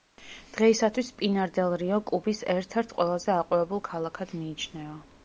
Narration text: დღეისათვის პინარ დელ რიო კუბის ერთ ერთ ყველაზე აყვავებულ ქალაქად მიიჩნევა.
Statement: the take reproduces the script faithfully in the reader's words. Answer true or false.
true